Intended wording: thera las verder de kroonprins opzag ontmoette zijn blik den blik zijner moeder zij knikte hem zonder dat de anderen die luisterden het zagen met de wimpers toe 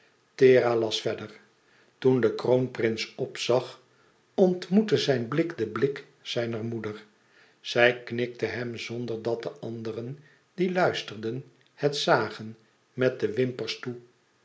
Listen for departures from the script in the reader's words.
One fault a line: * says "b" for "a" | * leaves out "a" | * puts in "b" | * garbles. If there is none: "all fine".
* puts in "toen"